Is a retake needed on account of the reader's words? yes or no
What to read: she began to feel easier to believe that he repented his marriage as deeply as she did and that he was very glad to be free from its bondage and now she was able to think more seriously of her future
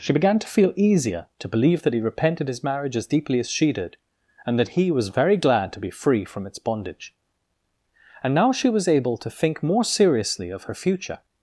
no